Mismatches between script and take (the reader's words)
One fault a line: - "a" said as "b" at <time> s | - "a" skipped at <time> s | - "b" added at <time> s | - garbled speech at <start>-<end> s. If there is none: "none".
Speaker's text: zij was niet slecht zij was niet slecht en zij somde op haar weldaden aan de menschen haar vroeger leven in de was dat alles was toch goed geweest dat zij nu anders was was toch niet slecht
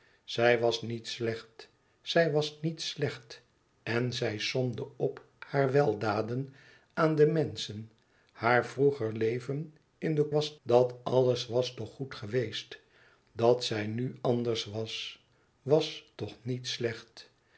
none